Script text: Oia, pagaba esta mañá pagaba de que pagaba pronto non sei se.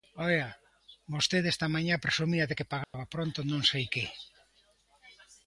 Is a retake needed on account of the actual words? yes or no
yes